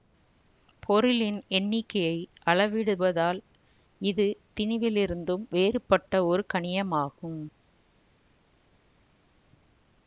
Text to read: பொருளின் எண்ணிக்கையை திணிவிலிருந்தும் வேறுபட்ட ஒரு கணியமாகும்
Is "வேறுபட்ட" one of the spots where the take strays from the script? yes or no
no